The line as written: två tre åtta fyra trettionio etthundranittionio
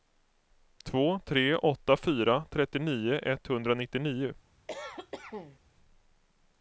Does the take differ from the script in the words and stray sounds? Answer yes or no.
yes